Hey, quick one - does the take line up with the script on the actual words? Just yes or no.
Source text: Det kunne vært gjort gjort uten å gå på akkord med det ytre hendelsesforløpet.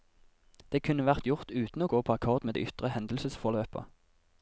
no